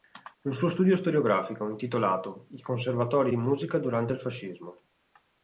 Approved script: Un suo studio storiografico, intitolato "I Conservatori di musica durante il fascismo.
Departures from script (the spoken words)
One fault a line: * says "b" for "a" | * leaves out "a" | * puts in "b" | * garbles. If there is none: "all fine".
all fine